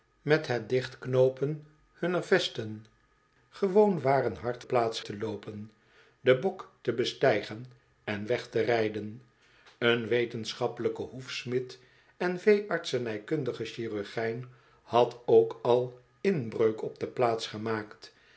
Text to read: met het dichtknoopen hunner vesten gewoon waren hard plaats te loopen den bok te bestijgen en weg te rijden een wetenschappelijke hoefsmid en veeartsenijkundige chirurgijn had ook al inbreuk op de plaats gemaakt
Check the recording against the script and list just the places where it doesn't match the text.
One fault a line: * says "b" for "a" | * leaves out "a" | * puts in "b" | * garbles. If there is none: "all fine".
all fine